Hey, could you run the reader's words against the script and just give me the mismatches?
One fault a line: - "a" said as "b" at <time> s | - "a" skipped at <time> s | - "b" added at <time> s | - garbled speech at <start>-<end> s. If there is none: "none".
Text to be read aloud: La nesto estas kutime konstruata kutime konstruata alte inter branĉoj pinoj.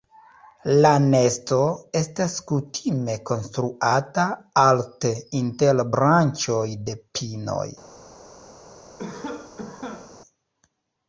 - "kutime konstruata" skipped at 4.3 s
- "de" added at 6.9 s